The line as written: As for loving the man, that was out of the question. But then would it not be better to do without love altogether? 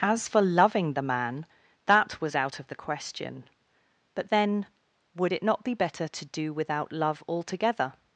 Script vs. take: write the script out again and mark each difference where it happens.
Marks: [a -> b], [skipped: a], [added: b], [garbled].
As for loving the man, that was out of the question. But then would it not be better to do without love altogether?